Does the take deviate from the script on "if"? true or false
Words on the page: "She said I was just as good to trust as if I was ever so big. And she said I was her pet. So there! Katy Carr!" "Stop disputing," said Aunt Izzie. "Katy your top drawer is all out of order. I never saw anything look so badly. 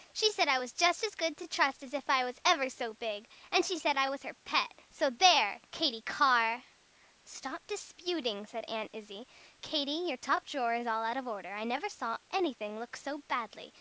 false